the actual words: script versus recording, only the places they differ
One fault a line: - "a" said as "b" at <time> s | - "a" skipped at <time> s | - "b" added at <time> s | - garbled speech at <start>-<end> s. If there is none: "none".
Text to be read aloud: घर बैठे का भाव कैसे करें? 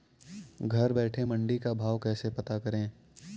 - "मंडी" added at 1.2 s
- "पता" added at 2.3 s